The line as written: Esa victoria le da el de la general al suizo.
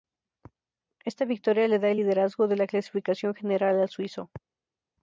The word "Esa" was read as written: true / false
false